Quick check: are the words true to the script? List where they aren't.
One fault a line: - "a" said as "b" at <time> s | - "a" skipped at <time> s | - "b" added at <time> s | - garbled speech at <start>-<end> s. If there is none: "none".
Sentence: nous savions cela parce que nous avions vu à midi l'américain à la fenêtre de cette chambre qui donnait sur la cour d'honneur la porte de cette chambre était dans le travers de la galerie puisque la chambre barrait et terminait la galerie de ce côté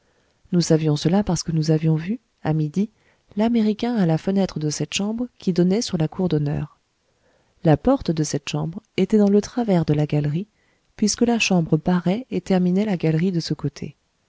none